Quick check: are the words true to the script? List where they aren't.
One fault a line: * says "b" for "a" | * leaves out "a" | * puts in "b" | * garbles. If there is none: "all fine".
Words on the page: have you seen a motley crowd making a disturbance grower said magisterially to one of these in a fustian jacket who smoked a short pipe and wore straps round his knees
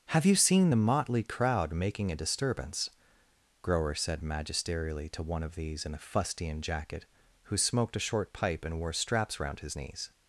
* says "the" for "a"